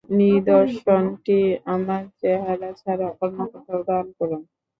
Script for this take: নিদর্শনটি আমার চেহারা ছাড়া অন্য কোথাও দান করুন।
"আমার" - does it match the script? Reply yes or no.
yes